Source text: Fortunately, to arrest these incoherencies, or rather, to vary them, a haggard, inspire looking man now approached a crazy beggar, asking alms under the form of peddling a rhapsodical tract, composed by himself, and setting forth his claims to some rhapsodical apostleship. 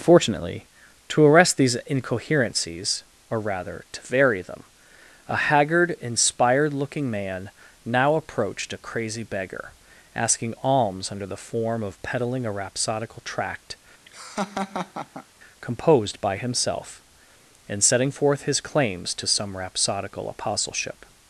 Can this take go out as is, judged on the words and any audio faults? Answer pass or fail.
fail